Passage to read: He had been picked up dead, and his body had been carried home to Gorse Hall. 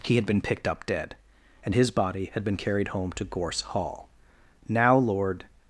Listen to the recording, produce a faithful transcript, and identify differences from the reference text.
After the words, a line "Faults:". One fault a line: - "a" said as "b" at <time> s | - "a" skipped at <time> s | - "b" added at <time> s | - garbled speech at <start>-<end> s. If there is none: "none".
He had been picked up dead, and his body had been carried home to Gorse Hall. Now Lord
Faults:
- "Now Lord" added at 4.7 s